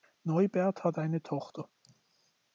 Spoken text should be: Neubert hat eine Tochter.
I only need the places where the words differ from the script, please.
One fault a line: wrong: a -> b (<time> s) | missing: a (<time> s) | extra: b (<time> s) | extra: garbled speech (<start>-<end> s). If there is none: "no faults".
no faults